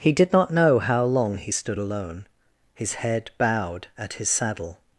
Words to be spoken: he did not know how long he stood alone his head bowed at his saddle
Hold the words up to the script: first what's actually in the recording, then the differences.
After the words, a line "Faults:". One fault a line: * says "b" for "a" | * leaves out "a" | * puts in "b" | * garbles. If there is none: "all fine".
he did not know how long he stood alone his head bowed at his saddle
Faults:
all fine